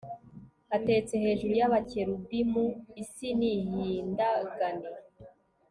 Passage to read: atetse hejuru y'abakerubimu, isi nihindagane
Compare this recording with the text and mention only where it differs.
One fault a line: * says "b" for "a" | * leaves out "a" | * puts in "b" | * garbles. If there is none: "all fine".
all fine